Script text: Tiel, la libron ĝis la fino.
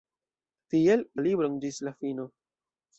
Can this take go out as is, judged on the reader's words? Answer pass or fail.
pass